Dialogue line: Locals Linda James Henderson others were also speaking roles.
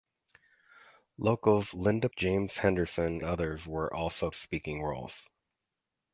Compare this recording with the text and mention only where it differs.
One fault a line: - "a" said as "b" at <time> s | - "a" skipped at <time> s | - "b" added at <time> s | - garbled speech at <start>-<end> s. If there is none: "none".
none